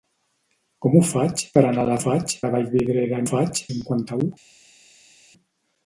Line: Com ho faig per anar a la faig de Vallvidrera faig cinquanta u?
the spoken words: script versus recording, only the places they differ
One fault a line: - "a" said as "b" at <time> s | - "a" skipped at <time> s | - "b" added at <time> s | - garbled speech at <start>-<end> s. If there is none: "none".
none